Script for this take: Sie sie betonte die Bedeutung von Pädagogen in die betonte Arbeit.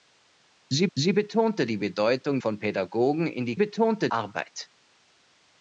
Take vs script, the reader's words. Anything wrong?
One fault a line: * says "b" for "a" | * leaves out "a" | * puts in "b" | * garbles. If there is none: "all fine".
all fine